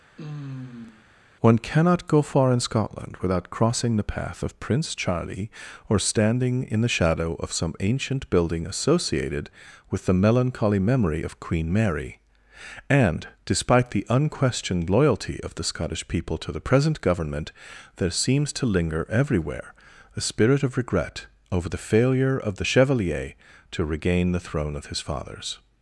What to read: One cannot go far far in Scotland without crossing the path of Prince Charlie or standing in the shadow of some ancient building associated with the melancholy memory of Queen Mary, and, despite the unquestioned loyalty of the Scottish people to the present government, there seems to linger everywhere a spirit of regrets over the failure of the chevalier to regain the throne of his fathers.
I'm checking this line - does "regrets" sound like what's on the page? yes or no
no